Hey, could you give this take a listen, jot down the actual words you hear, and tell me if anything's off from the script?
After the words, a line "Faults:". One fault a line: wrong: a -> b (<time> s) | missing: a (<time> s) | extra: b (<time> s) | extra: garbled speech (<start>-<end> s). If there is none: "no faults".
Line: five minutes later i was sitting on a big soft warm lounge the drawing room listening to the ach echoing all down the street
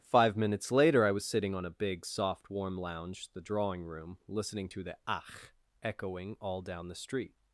five minutes later i was sitting on a big soft warm lounge the drawing room listening to the ach echoing all down the street
Faults:
no faults